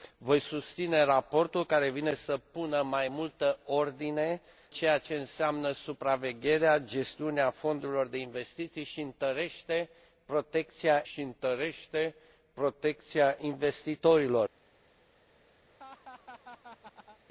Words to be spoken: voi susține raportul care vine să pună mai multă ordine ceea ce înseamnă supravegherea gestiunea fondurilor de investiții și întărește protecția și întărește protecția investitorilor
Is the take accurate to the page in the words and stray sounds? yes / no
no